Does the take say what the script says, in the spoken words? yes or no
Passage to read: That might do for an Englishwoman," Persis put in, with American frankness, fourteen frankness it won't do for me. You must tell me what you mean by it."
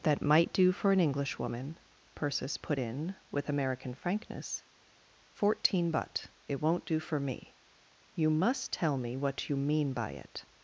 no